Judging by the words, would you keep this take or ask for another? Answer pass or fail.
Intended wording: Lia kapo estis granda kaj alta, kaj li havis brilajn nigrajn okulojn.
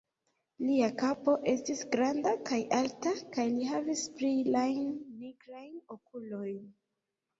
pass